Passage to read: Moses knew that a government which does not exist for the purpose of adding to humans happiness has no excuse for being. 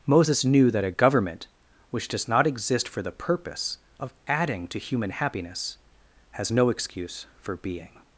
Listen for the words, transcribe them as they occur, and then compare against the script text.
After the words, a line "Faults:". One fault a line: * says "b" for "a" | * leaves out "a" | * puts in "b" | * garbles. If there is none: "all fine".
Moses knew that a government which does not exist for the purpose of adding to human happiness has no excuse for being.
Faults:
* says "human" for "humans"